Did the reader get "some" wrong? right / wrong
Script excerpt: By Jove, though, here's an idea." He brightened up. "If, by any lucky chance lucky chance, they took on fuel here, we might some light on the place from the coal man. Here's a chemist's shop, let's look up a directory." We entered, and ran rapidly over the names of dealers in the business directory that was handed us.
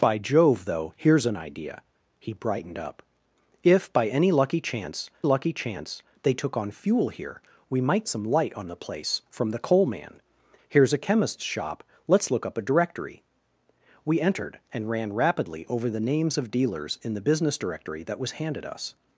right